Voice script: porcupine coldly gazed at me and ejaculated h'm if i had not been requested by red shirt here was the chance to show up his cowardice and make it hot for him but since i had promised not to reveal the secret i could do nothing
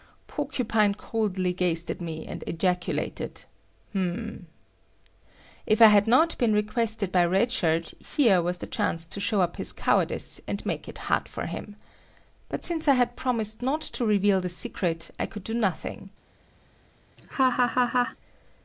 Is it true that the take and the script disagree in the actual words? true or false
false